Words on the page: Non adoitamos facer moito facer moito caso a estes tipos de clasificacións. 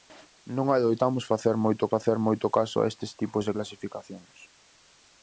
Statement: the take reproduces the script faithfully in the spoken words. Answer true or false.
true